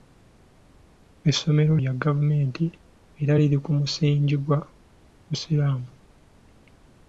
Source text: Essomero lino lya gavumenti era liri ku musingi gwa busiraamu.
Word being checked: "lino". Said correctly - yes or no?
no